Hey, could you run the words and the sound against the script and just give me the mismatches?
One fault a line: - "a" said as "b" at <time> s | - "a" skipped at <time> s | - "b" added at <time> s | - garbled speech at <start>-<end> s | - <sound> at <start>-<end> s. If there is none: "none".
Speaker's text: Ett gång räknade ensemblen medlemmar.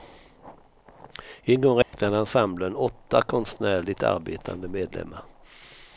- "Ett" said as "En" at 1.4 s
- dropout at 1.8-1.9 s
- "åtta konstnärligt arbetande" added at 2.8 s